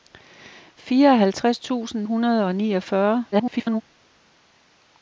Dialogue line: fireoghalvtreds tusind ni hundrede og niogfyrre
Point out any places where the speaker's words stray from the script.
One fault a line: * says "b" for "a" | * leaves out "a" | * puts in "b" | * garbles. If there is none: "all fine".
* leaves out "ni"
* garbles